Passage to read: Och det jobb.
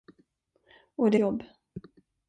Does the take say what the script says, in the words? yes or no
yes